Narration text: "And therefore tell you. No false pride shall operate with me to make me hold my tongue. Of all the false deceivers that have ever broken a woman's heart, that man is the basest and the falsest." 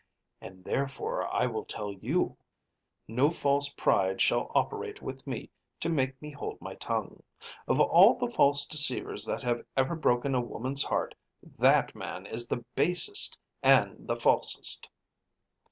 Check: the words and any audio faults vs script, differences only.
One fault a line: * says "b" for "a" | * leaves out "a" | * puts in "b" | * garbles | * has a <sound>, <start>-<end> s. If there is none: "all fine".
* puts in "I will"